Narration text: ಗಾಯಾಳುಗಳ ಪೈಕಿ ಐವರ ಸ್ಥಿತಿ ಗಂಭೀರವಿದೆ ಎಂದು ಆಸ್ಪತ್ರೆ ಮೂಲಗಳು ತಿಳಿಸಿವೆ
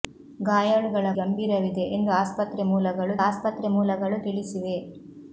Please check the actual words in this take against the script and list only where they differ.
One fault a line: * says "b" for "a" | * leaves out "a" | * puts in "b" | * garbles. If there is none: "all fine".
* says "ಗಂಭೀರವಿದೆ ಎಂದು ಆಸ್ಪತ್ರೆ ಮೂಲಗಳು" for "ಪೈಕಿ ಐವರ ಸ್ಥಿತಿ ಗಂಭೀರವಿದೆ ಎಂದು"